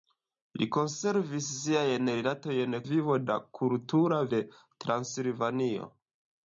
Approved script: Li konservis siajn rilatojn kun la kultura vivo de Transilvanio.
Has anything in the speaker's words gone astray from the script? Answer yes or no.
yes